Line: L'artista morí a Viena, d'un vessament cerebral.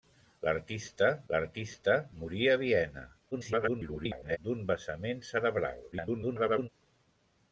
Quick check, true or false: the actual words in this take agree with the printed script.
false